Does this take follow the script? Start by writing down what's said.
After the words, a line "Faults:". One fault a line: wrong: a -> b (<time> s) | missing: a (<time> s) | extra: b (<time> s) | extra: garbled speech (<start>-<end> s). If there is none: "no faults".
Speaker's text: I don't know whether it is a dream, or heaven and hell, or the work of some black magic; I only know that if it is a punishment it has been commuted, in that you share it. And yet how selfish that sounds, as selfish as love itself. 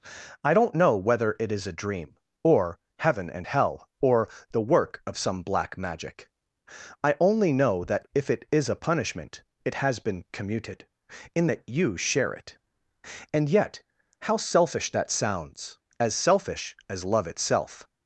I don't know whether it is a dream, or heaven and hell, or the work of some black magic; I only know that if it is a punishment it has been commuted, in that you share it. And yet how selfish that sounds, as selfish as love itself.
Faults:
no faults